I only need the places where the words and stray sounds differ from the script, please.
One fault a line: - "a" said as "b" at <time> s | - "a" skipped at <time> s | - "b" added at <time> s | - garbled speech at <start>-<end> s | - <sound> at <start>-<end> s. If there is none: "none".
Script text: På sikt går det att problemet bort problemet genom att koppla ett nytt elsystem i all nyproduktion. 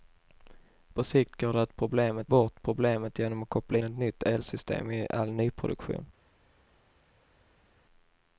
none